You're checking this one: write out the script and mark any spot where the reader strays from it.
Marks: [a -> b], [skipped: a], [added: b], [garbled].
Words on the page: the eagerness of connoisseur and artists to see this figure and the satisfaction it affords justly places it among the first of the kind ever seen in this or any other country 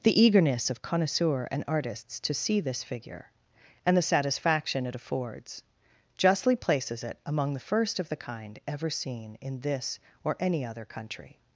the eagerness of connoisseur and artists to see this figure and the satisfaction it affords justly places it among the first of the kind ever seen in this or any other country